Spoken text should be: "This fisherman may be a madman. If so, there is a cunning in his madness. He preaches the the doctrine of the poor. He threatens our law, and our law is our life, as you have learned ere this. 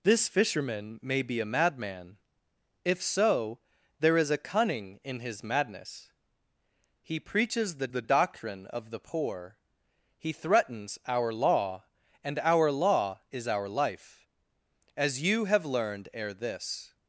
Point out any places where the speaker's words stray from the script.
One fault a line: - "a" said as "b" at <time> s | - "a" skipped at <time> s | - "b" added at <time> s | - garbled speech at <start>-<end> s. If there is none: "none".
none